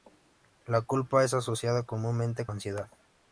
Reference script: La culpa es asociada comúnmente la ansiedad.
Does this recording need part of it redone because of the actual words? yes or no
no